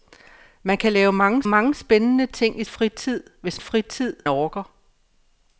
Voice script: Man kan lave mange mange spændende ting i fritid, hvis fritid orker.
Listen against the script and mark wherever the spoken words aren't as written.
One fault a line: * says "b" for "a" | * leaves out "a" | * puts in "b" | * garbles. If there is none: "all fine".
all fine